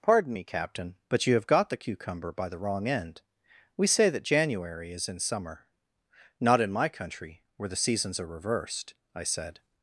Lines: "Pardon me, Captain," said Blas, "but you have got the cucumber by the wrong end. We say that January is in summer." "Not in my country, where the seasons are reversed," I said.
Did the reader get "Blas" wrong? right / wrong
wrong